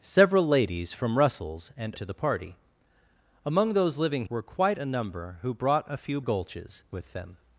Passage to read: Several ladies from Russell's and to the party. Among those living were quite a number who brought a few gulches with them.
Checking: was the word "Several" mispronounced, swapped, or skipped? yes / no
no